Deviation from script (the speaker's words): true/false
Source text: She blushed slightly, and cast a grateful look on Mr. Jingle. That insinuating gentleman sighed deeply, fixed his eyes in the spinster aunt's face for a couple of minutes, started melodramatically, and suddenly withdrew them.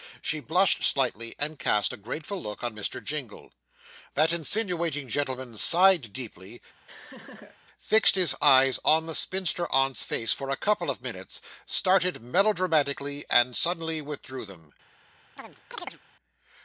true